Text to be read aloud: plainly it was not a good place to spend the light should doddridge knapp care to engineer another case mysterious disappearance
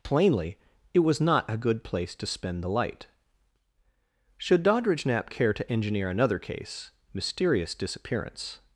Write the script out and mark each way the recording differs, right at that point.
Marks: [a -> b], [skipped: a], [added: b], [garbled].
plainly it was not a good place to spend the light should doddridge knapp care to engineer another case mysterious disappearance